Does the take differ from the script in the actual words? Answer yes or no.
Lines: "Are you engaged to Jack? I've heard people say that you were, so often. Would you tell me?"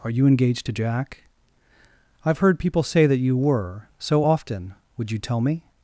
no